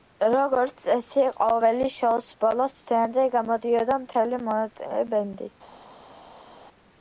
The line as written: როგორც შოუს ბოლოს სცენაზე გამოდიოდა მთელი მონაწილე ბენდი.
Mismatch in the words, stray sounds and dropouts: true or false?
true